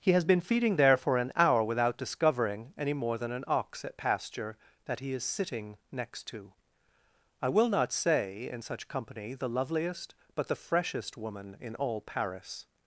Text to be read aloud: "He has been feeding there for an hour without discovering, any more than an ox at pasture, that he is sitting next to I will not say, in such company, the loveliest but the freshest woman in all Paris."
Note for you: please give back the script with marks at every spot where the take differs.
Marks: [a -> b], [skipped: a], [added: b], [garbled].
"He has been feeding there for an hour without discovering, any more than an ox at pasture, that he is sitting next to I will not say, in such company, the loveliest but the freshest woman in all Paris."